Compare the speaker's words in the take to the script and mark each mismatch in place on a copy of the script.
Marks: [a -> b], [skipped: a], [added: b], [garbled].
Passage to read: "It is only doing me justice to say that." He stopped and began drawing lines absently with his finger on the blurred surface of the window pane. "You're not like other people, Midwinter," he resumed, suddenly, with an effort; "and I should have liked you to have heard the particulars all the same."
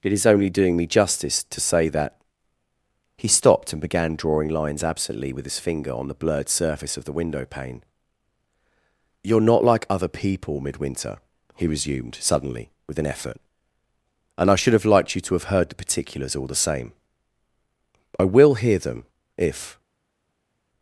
"It is only doing me justice to say that." He stopped and began drawing lines absently with his finger on the blurred surface of the window pane. "You're not like other people, Midwinter," he resumed, suddenly, with an effort; "and I should have liked you to have heard the particulars all the same." [added: I will hear them if]